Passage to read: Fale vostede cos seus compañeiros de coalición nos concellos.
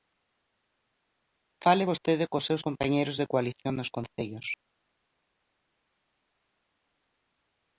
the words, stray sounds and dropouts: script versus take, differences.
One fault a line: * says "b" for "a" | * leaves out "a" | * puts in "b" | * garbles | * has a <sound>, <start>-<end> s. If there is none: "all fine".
all fine